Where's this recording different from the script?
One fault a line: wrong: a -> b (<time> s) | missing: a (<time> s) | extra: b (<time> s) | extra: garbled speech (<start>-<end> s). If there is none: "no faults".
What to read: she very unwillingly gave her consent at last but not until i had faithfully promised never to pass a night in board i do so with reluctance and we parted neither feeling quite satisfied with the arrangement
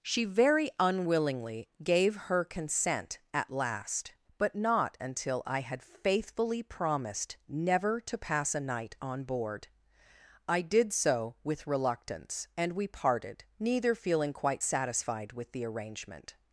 wrong: in -> on (9.0 s)
wrong: do -> did (10.6 s)